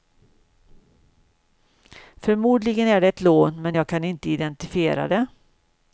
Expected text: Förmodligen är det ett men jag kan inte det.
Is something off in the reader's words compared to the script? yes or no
yes